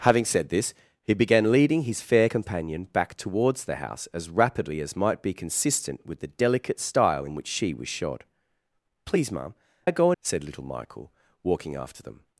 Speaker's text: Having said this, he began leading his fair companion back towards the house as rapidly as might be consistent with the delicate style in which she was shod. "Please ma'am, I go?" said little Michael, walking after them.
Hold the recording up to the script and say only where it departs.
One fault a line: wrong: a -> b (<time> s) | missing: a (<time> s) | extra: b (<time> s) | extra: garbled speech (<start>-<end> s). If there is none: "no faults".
no faults